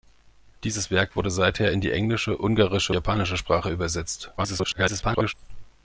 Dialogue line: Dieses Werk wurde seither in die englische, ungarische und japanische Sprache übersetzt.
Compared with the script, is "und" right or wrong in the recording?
wrong